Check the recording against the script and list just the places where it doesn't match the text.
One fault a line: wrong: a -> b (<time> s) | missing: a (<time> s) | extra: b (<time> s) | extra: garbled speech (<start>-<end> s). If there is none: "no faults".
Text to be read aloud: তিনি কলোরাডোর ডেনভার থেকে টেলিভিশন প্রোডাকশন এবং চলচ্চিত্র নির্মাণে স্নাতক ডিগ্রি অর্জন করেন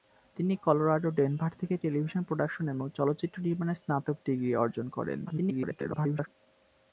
extra: garbled speech (5.3-6.3 s)